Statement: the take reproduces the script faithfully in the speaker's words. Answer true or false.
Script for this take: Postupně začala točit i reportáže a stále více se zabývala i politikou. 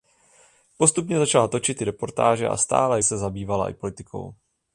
false